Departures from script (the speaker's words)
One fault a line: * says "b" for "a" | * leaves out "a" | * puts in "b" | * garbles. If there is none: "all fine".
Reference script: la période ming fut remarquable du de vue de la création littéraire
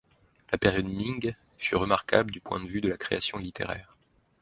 * puts in "point"